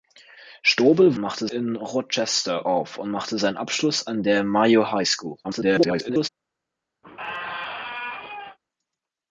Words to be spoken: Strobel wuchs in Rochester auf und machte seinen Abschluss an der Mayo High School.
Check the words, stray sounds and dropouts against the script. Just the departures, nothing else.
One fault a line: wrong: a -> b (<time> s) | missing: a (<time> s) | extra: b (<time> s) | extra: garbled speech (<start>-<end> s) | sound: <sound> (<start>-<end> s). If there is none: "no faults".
wrong: wuchs -> machte (1.2 s)
extra: garbled speech (5.4-6.3 s)
sound: squeak (7.0-8.6 s)